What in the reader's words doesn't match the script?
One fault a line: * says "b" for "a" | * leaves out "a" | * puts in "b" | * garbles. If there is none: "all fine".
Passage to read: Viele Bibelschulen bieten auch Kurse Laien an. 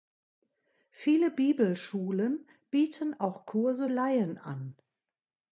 all fine